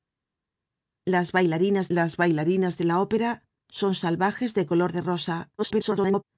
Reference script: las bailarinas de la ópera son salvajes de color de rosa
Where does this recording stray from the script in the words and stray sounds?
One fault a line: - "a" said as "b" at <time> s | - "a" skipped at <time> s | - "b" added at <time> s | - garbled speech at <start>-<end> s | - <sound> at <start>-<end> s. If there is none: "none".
- "las bailarinas" added at 1.9 s
- garbled speech at 5.6-6.2 s